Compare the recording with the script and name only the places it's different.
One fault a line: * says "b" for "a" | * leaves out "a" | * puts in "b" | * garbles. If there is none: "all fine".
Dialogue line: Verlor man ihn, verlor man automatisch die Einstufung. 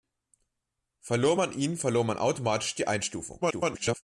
* garbles